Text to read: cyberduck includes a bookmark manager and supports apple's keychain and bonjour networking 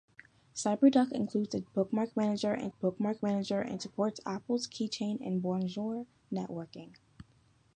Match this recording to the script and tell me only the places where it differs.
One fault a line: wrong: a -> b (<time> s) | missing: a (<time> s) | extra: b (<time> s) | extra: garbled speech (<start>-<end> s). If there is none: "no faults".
extra: bookmark manager and (2.7 s)